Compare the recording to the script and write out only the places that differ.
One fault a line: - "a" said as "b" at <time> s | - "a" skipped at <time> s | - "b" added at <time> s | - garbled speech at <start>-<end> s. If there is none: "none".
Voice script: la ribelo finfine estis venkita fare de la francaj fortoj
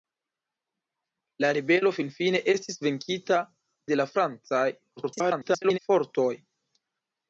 - "fare" skipped at 3.4 s
- garbled speech at 5.0-5.8 s